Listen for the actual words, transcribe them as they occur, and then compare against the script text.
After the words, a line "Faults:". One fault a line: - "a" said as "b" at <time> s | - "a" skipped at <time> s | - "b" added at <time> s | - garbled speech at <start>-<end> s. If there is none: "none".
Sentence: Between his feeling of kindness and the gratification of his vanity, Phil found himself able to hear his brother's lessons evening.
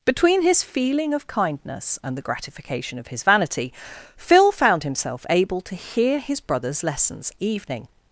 Between his feeling of kindness and the gratification of his vanity, Phil found himself able to hear his brother's lessons evening.
Faults:
none